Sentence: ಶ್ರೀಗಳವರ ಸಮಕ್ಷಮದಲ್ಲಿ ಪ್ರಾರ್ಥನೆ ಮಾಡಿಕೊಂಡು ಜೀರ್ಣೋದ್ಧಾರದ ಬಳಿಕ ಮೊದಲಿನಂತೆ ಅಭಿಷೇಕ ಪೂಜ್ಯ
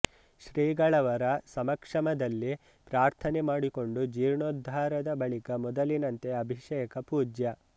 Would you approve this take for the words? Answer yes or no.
yes